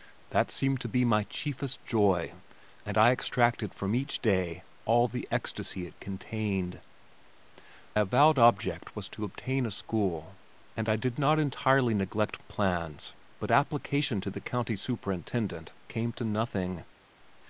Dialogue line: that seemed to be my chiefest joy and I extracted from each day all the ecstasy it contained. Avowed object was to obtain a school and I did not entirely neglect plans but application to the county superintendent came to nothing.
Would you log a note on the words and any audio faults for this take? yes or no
no